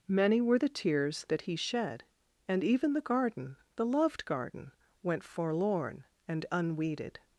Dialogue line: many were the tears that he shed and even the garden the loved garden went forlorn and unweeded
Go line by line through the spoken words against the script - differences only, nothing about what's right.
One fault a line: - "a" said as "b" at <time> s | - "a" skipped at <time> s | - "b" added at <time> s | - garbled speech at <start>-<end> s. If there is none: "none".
none